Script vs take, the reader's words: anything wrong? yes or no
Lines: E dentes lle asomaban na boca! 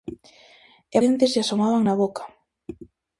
no